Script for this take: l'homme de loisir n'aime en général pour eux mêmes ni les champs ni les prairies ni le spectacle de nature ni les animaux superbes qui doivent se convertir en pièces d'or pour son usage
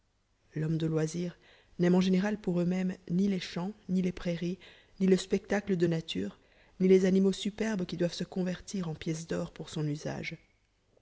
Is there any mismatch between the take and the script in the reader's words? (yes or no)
no